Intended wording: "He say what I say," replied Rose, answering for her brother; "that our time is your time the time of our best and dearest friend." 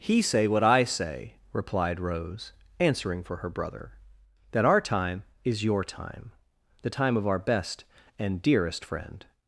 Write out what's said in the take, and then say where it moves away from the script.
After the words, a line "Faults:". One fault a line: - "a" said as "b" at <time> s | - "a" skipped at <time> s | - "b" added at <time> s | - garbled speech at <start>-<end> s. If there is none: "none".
"He say what I say," replied Rose, answering for her brother; "that our time is your time the time of our best and dearest friend."
Faults:
none